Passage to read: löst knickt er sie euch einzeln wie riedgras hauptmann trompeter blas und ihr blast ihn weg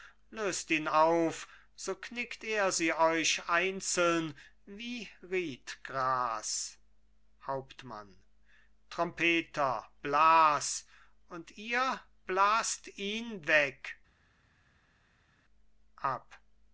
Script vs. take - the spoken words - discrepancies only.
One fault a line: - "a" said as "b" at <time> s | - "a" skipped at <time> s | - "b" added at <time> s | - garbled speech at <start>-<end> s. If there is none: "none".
- "ihn auf so" added at 0.7 s